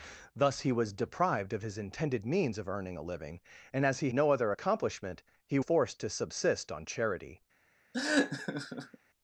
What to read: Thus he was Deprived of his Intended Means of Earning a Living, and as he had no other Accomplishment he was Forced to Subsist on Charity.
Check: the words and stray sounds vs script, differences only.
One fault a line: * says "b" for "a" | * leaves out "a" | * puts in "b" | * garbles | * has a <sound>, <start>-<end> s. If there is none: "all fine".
* leaves out "had"
* leaves out "was"
* has a laugh, 7.9-9.0 s